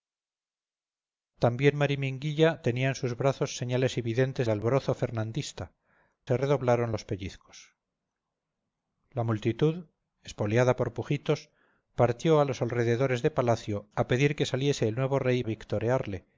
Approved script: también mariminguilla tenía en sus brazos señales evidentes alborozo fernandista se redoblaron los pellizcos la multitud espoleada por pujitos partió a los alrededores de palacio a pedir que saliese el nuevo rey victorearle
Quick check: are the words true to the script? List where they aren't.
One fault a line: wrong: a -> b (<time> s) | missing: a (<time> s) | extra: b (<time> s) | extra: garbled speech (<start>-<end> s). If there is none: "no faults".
no faults